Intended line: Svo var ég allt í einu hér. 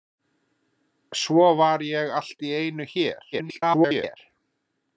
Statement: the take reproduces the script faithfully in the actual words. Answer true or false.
false